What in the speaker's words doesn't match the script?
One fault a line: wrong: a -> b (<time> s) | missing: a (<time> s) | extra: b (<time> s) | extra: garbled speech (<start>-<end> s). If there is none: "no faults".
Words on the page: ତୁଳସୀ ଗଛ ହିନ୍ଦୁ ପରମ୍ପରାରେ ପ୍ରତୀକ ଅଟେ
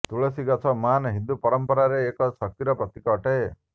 extra: ମହାନ (0.8 s)
extra: ଏକ ଶକ୍ତିର (2.1 s)